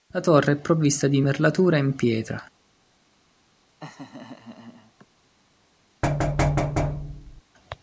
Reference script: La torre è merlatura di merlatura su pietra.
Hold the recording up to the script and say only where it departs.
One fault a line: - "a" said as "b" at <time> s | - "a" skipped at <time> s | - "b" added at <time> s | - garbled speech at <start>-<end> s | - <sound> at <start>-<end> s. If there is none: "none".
- "merlatura" said as "provvista" at 0.6 s
- "su" said as "in" at 1.8 s
- laugh at 3.8-5.1 s
- thud at 6.0-7.4 s